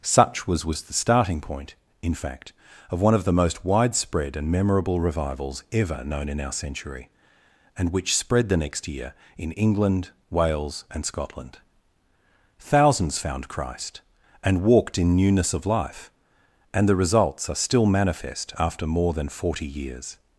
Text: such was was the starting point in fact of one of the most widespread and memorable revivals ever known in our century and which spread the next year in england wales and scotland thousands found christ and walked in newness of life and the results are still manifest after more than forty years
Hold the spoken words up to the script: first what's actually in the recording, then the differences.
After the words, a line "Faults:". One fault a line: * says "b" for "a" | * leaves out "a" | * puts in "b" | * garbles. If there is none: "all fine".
such was was the starting point in fact of one of the most widespread and memorable revivals ever known in our century and which spread the next year in england wales and scotland thousands found christ and walked in newness of life and the results are still manifest after more than forty years
Faults:
all fine